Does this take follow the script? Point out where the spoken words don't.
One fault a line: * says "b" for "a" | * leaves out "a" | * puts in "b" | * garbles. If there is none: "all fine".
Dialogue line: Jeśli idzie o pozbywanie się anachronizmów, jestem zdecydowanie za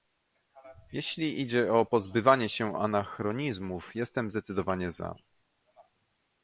all fine